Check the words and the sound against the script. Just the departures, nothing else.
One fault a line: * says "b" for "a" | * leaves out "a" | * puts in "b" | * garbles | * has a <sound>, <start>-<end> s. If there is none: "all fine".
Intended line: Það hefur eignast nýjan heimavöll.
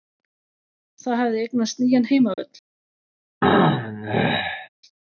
* says "hafði" for "hefur"
* has a dropout, 2.3-2.4 s
* has a throat clearing, 3.4-4.7 s